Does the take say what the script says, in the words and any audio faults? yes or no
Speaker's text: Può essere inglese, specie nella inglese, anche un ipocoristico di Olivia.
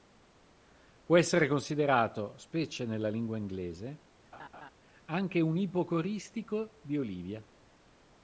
no